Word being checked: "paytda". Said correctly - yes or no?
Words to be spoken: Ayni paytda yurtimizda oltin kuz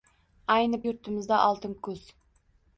no